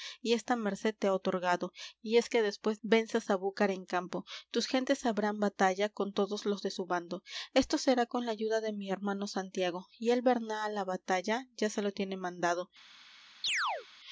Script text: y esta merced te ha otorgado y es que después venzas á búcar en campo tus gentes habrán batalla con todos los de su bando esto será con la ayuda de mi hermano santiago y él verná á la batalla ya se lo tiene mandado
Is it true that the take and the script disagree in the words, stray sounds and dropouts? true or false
true